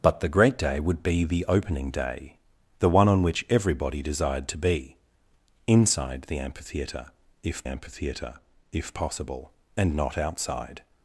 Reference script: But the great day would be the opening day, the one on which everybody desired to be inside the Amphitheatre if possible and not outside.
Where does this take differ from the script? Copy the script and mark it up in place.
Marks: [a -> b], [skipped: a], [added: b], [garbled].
But the great day would be the opening day, the one on which everybody desired to be inside the Amphitheatre if [added: Amphitheatre if] possible and not outside.